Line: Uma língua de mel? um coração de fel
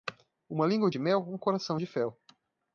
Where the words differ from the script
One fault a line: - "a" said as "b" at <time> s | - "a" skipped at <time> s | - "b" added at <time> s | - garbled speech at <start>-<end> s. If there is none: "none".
none